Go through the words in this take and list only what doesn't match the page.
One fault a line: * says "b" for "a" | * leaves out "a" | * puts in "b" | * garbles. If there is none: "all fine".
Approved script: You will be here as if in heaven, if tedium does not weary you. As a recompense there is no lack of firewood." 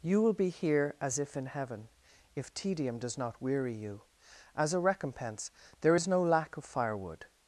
all fine